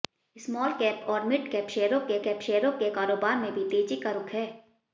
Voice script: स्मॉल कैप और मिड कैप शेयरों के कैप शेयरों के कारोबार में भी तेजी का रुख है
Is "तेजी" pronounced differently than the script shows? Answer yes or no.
no